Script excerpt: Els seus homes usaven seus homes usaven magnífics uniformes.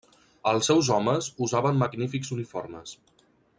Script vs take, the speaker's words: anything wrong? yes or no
yes